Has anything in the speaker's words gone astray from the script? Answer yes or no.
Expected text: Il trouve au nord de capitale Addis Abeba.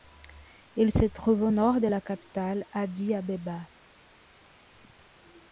yes